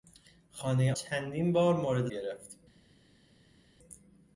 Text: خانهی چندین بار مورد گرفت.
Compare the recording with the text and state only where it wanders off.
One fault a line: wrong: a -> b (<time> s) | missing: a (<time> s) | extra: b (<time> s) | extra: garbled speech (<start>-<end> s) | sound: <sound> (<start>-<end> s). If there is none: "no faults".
no faults